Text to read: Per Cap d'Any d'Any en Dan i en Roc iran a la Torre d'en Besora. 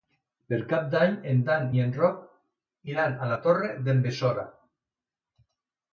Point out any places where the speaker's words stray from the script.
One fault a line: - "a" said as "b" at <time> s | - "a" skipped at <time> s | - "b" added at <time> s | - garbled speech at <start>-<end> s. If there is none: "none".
- "d'Any" skipped at 1.1 s